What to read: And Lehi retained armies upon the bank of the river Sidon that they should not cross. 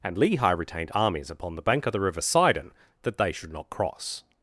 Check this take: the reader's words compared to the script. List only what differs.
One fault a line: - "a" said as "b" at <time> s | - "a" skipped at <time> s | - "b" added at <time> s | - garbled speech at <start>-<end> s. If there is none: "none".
none